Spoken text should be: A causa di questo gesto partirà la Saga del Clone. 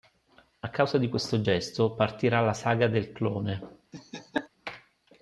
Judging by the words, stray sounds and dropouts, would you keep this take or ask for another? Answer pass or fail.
fail